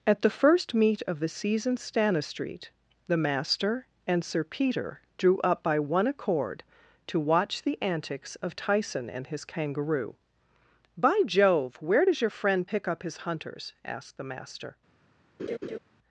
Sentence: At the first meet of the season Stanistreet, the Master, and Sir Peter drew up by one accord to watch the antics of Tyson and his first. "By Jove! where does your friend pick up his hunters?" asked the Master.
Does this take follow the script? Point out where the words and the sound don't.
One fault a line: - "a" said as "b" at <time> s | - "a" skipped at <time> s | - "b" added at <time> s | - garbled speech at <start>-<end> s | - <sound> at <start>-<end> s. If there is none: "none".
- "first" said as "kangaroo" at 9.4 s
- laugh at 15.4-15.8 s